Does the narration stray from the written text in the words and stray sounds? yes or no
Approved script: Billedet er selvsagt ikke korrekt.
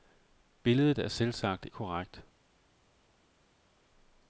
yes